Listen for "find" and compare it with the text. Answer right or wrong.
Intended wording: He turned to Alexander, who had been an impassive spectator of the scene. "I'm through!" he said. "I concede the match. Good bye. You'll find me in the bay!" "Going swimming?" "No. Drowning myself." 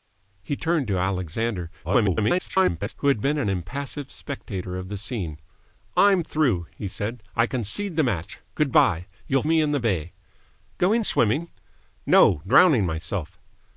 wrong